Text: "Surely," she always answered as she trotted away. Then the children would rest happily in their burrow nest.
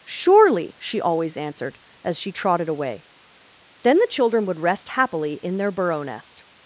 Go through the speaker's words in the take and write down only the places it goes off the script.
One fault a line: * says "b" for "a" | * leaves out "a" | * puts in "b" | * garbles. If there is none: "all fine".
all fine